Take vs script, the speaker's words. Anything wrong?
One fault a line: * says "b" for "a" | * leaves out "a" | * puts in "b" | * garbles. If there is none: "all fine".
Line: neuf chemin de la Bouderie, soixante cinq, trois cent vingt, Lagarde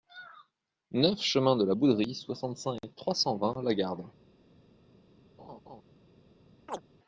all fine